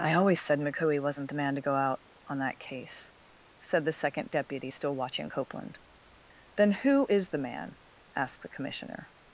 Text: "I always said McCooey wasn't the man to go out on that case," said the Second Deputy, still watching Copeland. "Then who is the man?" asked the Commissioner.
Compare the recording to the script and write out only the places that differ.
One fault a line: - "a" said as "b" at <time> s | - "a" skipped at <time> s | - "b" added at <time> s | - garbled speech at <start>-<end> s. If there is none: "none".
none